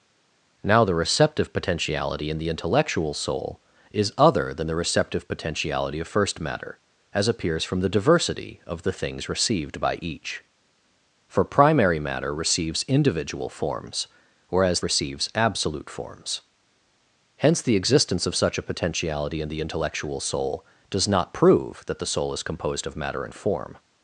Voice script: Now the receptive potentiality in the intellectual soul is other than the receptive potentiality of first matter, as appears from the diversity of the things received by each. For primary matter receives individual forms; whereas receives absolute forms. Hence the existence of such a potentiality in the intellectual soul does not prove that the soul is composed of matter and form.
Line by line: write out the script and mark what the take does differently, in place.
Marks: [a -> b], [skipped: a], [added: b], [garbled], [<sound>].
Now the receptive potentiality in the intellectual soul is other than the receptive potentiality of first matter, as appears from the diversity of the things received by each. For primary matter receives individual forms; whereas receives absolute forms. Hence the existence of such a potentiality in the intellectual soul does not prove that the soul is composed of matter and form.